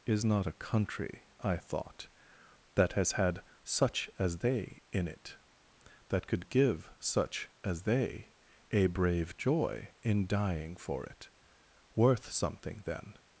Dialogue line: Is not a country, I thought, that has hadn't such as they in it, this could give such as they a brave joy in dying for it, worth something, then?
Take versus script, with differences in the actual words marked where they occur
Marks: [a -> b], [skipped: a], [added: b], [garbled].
Is not a country, I thought, that has [hadn't -> had] such as they in it, [this -> that] could give such as they a brave joy in dying for it, worth something, then?